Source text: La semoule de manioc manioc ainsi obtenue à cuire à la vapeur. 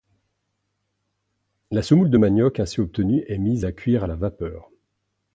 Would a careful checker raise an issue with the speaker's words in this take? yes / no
yes